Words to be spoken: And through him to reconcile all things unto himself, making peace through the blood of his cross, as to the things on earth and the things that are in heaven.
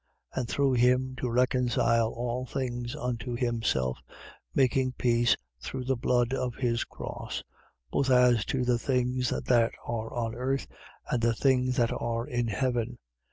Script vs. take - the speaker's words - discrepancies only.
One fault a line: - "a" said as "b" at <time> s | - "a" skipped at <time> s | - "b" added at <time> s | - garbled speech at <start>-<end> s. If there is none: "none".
- "both" added at 7.9 s
- "that are" added at 9.3 s